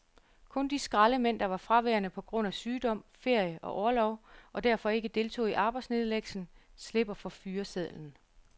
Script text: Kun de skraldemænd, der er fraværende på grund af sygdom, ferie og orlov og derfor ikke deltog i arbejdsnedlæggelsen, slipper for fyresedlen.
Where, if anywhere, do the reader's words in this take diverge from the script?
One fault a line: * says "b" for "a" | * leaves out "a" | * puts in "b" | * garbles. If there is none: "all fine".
* says "var" for "er"